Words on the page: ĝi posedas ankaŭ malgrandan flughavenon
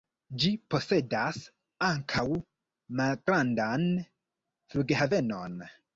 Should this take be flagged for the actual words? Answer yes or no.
no